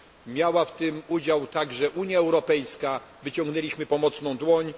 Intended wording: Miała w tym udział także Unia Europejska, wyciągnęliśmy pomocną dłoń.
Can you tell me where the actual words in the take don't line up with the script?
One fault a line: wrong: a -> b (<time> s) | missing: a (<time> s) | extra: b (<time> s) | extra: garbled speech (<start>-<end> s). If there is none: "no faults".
no faults